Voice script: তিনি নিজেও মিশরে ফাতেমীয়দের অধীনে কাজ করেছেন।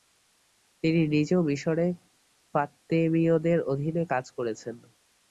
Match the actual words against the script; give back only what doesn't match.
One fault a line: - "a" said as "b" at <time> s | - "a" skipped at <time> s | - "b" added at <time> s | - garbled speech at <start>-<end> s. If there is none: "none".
none